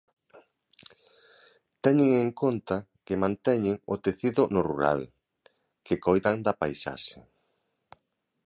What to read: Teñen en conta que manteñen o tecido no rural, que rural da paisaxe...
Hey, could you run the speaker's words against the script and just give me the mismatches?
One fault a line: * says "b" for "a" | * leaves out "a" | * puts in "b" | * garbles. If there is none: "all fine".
* says "coidan" for "rural"